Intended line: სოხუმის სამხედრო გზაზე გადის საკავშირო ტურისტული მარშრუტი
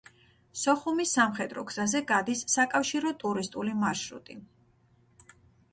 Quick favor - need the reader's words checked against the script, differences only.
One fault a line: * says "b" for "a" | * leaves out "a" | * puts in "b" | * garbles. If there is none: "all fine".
all fine